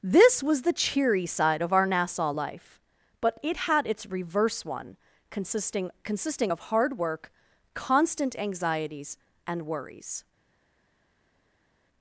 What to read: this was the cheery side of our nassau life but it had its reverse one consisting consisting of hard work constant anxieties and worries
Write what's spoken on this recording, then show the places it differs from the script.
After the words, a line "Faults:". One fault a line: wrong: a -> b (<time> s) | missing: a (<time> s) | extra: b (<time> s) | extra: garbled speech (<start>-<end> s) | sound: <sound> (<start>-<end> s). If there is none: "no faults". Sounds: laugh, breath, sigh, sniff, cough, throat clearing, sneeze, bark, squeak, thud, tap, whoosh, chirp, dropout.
this was the cheery side of our nassau life but it had its reverse one consisting consisting of hard work constant anxieties and worries
Faults:
no faults